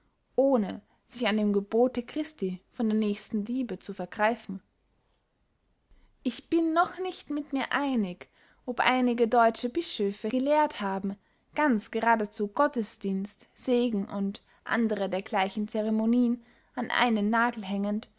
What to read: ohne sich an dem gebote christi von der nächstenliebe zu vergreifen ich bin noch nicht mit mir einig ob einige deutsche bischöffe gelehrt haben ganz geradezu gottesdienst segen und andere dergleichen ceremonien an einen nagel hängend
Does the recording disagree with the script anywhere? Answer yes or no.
no